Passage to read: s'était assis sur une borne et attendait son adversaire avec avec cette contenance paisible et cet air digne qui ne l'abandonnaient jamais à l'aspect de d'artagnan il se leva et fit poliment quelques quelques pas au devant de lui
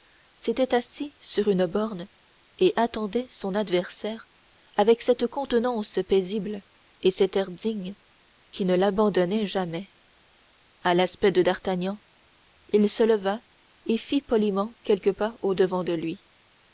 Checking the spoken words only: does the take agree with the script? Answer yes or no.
no